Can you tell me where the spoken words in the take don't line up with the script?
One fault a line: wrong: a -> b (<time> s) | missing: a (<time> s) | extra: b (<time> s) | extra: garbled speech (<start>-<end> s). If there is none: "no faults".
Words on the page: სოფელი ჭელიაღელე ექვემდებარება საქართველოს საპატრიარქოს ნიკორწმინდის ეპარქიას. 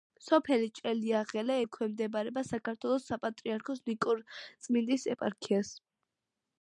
no faults